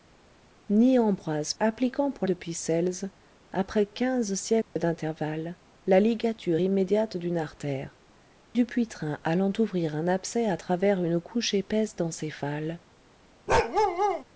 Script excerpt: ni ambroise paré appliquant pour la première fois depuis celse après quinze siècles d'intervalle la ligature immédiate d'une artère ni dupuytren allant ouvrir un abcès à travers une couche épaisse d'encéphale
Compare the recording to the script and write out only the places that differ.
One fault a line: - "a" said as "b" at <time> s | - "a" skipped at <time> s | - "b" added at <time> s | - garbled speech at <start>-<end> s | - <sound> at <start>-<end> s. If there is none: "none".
- "paré" skipped at 1.5 s
- "la première fois" skipped at 2.3 s
- dropout at 4.6-4.8 s
- "ni" skipped at 8.0 s
- bark at 13.5-14.2 s